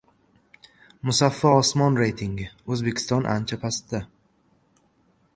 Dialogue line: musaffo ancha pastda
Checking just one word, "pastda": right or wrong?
right